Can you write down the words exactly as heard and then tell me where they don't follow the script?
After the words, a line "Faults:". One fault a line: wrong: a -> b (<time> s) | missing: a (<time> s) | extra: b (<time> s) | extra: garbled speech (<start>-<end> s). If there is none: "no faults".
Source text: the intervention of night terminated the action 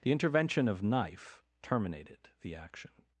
the intervention of knife terminated the action
Faults:
wrong: night -> knife (0.8 s)